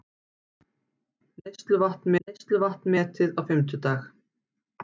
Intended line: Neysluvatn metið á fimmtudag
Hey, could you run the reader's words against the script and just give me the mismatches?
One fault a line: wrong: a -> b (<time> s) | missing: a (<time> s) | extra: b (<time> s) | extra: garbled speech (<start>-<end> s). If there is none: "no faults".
extra: neysluvatn (2.2 s)